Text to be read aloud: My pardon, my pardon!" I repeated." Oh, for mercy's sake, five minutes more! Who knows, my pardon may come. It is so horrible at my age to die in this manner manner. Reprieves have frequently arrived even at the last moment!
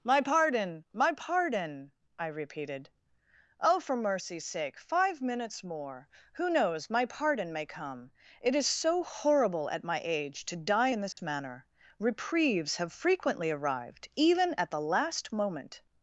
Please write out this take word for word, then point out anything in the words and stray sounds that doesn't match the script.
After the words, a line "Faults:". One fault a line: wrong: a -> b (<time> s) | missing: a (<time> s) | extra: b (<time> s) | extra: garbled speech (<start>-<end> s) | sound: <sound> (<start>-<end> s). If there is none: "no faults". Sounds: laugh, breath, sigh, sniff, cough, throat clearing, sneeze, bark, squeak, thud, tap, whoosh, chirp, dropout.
My pardon, my pardon!" I repeated." Oh, for mercy's sake, five minutes more! Who knows, my pardon may come. It is so horrible at my age to die in this manner. Reprieves have frequently arrived even at the last moment!
Faults:
sound: dropout (11.1-11.2 s)
missing: manner (11.7 s)